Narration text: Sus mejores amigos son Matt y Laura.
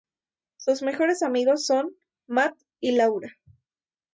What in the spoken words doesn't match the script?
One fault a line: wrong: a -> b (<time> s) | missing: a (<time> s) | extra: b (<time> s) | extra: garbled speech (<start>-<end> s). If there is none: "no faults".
no faults